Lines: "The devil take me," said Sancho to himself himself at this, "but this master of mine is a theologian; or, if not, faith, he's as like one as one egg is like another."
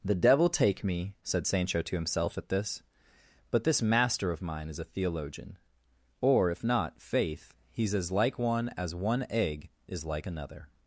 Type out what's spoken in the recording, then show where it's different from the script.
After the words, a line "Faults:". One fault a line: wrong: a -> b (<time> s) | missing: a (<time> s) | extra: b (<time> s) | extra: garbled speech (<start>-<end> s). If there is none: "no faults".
"The devil take me," said Sancho to himself at this, "but this master of mine is a theologian; or, if not, faith, he's as like one as one egg is like another."
Faults:
missing: himself (2.4 s)